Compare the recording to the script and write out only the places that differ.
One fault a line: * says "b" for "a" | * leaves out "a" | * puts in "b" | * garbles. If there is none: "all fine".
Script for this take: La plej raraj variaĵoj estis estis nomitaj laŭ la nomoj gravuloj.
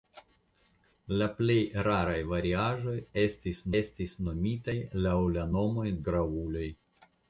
all fine